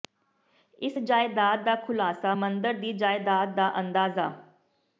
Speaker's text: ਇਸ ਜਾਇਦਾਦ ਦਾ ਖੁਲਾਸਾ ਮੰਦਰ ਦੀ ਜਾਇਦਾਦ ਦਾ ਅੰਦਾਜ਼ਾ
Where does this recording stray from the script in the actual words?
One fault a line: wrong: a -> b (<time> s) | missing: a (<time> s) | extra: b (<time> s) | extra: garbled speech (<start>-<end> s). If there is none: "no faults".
no faults